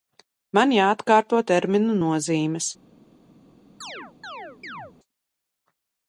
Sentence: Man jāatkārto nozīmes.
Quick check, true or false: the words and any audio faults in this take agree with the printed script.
false